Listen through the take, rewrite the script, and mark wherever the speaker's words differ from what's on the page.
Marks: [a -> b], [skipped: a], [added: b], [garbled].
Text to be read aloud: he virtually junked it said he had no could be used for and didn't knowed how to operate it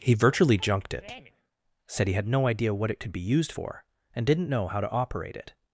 he virtually junked it said he had no [added: idea what it] could be used for and didn't [knowed -> know] how to operate it